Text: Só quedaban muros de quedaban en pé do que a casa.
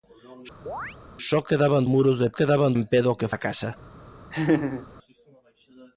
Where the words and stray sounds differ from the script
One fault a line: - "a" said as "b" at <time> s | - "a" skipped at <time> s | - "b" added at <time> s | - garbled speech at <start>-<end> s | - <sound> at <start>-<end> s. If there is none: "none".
- chirp at 0.7-1.0 s
- laugh at 4.3-4.9 s